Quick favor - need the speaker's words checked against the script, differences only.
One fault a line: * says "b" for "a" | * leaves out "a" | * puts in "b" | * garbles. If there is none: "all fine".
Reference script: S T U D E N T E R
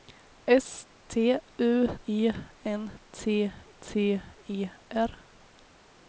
* leaves out "D"
* puts in "T"